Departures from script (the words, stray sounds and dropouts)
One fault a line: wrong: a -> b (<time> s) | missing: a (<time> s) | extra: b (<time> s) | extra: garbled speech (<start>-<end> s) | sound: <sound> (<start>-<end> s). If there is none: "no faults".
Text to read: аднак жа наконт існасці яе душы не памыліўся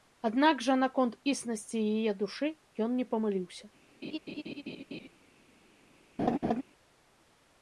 extra: ён (2.9 s)
sound: laugh (4.0-5.1 s)
sound: laugh (6.2-6.6 s)